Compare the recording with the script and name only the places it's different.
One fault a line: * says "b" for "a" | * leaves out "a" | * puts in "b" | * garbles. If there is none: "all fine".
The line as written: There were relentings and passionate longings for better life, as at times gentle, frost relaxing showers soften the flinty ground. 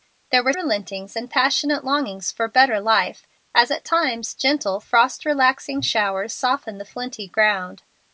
all fine